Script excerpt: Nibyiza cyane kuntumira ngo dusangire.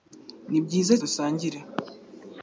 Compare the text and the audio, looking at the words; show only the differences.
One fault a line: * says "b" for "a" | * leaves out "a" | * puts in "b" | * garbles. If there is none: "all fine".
* leaves out "cyane kuntumira ngo"